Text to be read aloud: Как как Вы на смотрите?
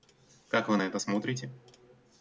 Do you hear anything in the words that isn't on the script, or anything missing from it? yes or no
yes